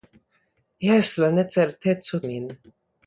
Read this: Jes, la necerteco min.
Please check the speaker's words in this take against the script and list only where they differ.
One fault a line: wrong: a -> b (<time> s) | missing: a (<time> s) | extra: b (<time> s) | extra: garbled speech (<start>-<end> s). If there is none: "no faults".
no faults